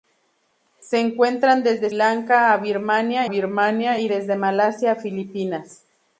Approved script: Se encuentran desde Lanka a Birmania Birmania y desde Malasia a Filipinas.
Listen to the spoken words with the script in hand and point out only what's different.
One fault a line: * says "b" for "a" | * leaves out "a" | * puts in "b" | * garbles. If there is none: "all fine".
all fine